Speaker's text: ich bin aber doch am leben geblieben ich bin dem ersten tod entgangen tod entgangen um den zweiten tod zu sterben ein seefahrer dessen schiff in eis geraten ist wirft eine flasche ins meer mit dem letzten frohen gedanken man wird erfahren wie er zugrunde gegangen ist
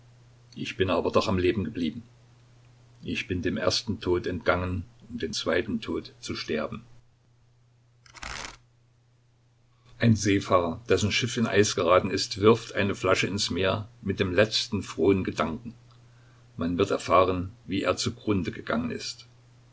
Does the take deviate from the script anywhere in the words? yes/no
yes